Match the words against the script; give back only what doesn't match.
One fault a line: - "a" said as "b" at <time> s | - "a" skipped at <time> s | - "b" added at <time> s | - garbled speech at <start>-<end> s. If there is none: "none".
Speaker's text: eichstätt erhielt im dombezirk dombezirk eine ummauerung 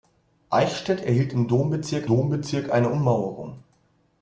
none